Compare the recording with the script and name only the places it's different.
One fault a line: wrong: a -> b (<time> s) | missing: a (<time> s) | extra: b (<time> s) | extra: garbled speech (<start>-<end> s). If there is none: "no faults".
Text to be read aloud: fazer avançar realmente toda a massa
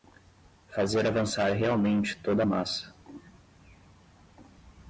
no faults